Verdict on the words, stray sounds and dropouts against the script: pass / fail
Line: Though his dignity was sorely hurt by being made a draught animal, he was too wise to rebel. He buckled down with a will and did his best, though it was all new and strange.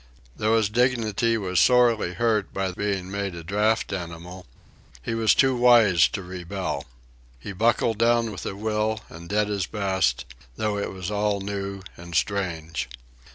pass